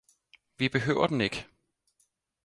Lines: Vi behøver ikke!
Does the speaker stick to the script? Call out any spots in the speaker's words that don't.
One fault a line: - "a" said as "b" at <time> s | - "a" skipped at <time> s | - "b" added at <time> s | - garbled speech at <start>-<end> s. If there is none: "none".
- "den" added at 1.1 s